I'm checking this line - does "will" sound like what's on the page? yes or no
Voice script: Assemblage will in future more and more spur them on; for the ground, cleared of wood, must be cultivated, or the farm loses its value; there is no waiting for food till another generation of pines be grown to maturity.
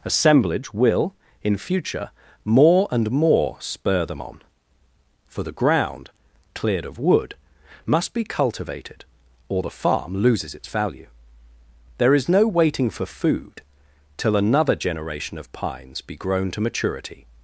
yes